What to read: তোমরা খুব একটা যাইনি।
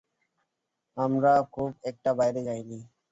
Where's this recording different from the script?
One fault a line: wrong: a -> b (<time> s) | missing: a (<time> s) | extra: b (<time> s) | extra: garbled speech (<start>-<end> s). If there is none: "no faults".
wrong: তোমরা -> আমরা (1.0 s)
extra: বাইরে (2.1 s)